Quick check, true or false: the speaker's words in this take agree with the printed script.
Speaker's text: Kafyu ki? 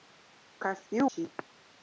true